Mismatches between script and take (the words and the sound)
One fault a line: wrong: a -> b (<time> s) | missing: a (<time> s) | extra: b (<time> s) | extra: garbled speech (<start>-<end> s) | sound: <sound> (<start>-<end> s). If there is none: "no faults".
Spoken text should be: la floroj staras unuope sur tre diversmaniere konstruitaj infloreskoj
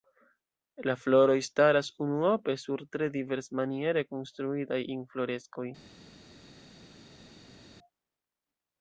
no faults